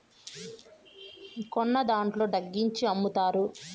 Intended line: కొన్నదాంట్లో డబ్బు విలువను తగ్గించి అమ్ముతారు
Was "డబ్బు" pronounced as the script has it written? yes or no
no